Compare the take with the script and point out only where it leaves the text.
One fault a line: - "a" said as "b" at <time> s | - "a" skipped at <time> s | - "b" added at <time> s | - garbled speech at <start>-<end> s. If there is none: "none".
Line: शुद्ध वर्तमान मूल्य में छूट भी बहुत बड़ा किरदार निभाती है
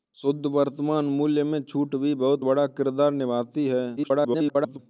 - garbled speech at 4.0-4.8 s